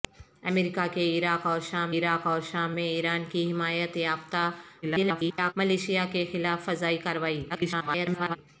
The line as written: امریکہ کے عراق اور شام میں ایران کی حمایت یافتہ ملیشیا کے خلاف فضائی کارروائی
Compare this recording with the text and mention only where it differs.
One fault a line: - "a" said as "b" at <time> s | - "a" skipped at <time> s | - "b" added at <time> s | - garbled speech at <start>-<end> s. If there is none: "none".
- "عراق اور شام" added at 2.0 s
- garbled speech at 4.8-5.5 s
- garbled speech at 7.5-8.4 s